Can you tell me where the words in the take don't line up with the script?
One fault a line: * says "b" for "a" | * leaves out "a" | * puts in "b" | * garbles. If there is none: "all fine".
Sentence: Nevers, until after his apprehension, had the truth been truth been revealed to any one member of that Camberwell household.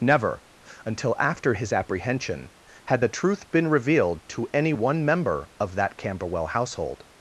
* says "Never" for "Nevers"
* leaves out "truth been"